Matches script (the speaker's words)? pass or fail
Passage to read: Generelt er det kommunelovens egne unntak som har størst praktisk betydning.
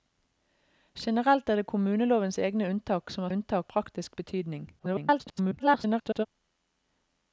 fail